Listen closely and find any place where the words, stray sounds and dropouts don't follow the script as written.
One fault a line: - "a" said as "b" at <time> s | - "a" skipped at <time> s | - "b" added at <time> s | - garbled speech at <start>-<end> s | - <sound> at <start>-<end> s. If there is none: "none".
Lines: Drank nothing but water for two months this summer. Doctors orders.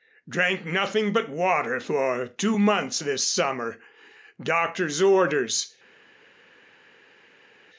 none